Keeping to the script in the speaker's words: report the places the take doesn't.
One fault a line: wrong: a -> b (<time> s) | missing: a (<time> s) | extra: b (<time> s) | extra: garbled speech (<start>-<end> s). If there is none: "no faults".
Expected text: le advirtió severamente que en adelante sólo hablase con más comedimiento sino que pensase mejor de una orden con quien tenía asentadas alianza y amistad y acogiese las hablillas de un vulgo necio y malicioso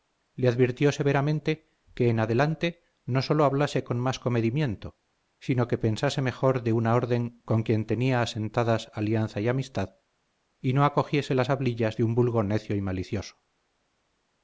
extra: no (3.0 s)
extra: no (10.7 s)